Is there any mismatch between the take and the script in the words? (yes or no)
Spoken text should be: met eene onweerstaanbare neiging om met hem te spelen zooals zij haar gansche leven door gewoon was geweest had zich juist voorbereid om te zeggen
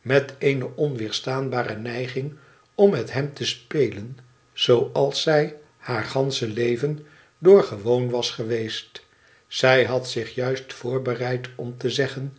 yes